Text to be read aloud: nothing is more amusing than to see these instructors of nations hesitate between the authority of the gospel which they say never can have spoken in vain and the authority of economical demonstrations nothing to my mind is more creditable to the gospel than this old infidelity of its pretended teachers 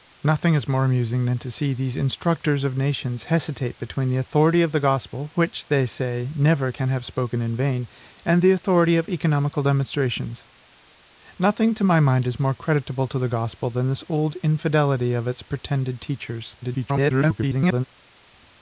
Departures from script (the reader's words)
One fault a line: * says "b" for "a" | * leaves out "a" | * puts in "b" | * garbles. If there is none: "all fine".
* garbles